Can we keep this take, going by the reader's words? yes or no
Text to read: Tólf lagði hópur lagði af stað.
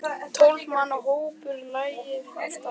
no